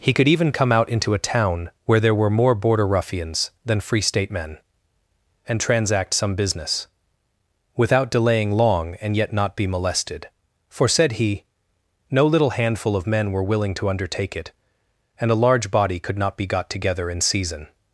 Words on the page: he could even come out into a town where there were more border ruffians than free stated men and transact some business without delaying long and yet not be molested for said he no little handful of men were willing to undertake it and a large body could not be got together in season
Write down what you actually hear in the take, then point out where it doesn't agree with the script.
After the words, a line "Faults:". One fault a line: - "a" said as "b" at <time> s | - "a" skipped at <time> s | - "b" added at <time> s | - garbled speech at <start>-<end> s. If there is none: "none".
he could even come out into a town where there were more border ruffians than free state men and transact some business without delaying long and yet not be molested for said he no little handful of men were willing to undertake it and a large body could not be got together in season
Faults:
- "stated" said as "state" at 4.0 s